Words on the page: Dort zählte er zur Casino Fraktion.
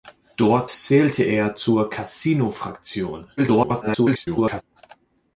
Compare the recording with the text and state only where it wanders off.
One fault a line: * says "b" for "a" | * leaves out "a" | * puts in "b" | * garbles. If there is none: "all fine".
* garbles